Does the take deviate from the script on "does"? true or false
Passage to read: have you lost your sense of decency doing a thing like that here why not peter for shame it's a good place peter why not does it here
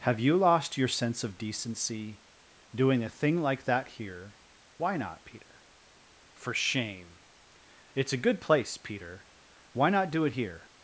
true